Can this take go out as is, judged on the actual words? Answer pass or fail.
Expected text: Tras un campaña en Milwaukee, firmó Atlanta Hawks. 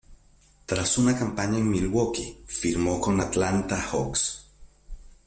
fail